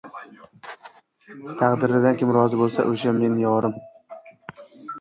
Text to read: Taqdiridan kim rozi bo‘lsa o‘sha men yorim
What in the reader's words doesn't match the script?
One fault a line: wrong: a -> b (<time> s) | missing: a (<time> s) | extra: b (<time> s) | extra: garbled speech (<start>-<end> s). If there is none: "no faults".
no faults